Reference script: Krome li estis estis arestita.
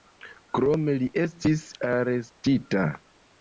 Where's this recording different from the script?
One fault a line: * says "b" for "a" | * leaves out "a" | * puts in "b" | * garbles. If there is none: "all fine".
* leaves out "estis"